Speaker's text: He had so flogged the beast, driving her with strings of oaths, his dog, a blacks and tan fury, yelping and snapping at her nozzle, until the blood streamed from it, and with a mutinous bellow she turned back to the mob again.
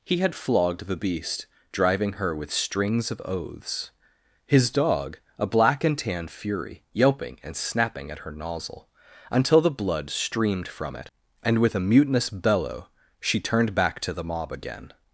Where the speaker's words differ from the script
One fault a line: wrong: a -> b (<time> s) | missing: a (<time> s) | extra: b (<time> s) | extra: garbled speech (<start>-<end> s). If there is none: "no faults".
missing: so (0.3 s)
wrong: blacks -> black (5.5 s)